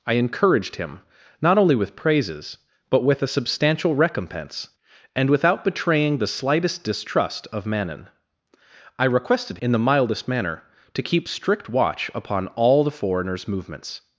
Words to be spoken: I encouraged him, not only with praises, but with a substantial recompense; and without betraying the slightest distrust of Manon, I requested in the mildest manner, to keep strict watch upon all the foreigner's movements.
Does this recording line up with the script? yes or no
yes